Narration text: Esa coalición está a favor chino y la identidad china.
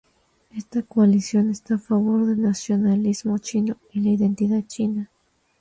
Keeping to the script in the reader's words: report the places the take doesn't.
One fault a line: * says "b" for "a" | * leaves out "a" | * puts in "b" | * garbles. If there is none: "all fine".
* says "Esta" for "Esa"
* puts in "del nacionalismo"